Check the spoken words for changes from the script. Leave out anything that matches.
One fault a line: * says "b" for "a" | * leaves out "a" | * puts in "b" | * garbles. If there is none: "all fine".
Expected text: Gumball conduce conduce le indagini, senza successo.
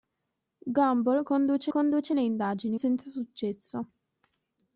all fine